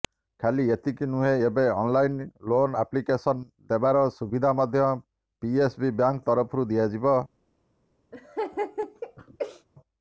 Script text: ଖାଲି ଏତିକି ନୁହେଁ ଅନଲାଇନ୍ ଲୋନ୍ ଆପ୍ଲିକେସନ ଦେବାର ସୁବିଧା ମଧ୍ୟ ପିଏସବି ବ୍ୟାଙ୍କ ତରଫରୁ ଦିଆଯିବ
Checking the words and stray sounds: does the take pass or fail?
fail